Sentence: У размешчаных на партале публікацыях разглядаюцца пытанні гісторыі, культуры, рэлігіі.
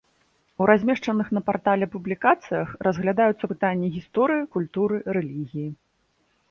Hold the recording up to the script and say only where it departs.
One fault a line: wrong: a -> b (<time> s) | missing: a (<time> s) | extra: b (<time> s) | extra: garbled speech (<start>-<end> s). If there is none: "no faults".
no faults